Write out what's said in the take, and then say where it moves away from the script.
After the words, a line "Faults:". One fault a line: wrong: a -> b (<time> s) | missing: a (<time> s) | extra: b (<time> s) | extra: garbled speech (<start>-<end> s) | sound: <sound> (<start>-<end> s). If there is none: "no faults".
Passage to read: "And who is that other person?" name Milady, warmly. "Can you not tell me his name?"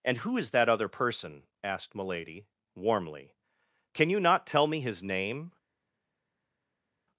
"And who is that other person?" asked Milady, warmly. "Can you not tell me his name?"
Faults:
wrong: name -> asked (1.6 s)